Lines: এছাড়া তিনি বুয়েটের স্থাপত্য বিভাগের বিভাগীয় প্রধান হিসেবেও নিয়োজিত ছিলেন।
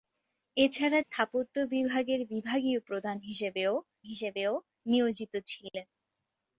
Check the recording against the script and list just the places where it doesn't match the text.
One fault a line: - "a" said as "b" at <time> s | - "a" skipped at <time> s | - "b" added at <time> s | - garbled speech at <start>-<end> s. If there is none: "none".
- "তিনি বুয়েটের" skipped at 1.0 s
- "হিসেবেও" added at 4.0 s